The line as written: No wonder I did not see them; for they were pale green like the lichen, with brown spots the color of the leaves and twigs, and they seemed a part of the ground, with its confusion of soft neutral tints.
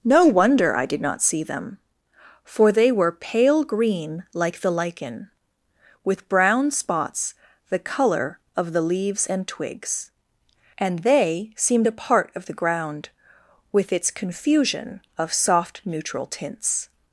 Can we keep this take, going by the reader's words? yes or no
yes